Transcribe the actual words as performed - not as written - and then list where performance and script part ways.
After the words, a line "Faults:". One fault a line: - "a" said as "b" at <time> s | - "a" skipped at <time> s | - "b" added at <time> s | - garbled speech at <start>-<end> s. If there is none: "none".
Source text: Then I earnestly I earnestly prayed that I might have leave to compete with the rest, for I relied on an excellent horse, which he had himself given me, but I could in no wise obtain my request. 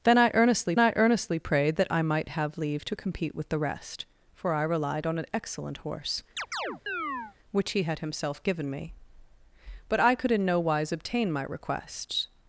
Then I earnestly I earnestly prayed that I might have leave to compete with the rest, for I relied on an excellent horse, which he had himself given me, but I could in no wise obtain my request.
Faults:
none